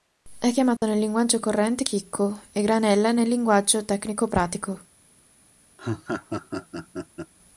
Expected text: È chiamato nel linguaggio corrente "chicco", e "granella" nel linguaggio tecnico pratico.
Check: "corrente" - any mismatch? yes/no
no